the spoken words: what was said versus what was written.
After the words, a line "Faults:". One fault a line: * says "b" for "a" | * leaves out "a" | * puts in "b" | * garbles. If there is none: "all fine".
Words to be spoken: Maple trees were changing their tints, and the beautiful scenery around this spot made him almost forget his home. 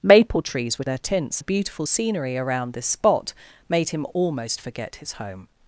Maple trees were their tints, the beautiful scenery around this spot made him almost forget his home.
Faults:
* leaves out "changing"
* leaves out "and"